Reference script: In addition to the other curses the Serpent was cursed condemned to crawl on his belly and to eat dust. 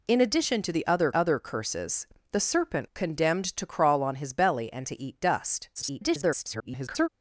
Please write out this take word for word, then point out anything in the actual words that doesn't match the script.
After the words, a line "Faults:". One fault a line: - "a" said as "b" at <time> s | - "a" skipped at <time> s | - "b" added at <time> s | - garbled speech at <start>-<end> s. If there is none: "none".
In addition to the other other curses the Serpent condemned to crawl on his belly and to eat dust. [garbled]
Faults:
- "other" added at 1.1 s
- "was cursed" skipped at 2.9 s
- garbled speech at 5.8-7.1 s